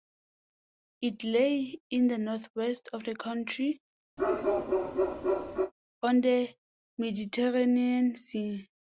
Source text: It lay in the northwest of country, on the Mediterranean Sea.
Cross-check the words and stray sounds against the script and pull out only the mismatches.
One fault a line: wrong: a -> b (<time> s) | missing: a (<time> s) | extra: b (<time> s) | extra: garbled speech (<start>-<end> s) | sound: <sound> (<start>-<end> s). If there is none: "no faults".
extra: the (3.0 s)
sound: bark (4.2-5.7 s)